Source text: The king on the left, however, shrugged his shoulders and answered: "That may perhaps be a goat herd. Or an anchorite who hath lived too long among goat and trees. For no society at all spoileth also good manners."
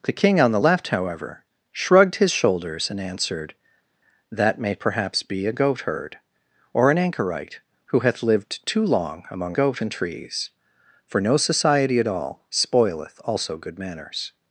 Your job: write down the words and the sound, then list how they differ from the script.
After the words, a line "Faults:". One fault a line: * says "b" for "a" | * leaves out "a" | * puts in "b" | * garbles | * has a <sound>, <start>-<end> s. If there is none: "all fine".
The king on the left, however, shrugged his shoulders and answered: "That may perhaps be a goat herd. Or an anchorite who hath lived too long among goat and trees. For no society at all spoileth also good manners."
Faults:
all fine